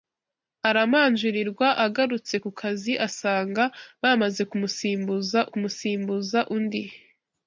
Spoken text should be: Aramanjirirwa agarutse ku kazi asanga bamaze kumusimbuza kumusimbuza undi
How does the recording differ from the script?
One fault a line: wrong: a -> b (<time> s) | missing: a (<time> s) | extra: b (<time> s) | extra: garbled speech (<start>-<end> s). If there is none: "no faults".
no faults